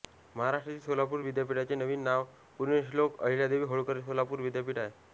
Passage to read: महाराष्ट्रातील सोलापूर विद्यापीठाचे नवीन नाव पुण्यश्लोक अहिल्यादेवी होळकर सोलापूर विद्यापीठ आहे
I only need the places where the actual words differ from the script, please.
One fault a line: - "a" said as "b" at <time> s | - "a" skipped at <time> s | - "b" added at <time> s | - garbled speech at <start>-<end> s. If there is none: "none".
none